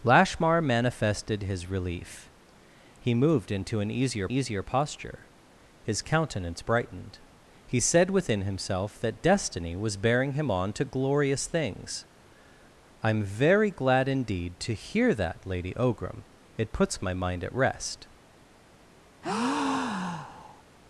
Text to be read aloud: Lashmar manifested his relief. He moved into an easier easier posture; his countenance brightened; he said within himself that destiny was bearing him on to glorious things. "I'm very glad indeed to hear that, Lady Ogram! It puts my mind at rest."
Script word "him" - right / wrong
right